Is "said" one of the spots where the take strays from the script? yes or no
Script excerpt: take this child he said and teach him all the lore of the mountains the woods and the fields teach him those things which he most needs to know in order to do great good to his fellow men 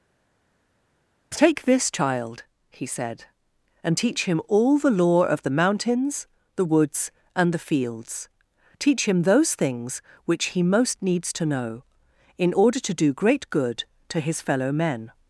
no